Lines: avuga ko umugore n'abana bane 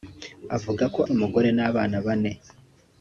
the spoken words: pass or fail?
pass